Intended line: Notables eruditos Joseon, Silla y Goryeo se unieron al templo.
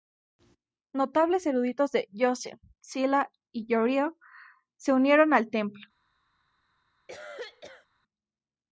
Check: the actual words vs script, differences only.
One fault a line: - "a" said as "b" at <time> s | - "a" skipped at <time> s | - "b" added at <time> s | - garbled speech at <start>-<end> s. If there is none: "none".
- "de" added at 1.9 s